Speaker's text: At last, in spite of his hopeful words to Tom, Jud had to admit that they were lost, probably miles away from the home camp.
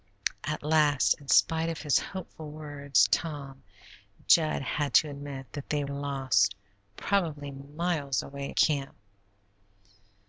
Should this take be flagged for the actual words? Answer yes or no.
yes